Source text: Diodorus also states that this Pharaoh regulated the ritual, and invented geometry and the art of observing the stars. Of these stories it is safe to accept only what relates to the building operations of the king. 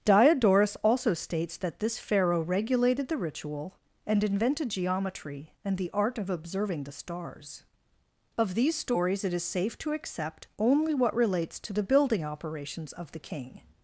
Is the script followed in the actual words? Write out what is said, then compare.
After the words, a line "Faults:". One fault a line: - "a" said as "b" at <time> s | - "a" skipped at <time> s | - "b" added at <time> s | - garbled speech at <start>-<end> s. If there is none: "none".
Diodorus also states that this Pharaoh regulated the ritual, and invented geometry and the art of observing the stars. Of these stories it is safe to accept only what relates to the building operations of the king.
Faults:
none